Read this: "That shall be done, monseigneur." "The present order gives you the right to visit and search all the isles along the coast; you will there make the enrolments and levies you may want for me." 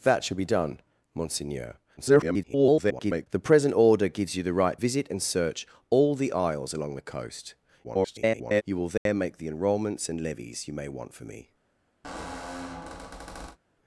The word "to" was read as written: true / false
false